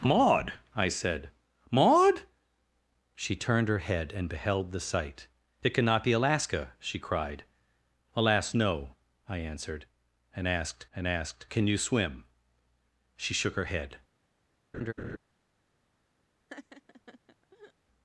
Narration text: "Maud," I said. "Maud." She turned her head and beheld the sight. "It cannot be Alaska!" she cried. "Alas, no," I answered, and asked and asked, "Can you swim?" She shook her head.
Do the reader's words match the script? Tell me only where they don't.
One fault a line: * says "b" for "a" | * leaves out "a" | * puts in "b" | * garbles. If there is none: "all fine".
all fine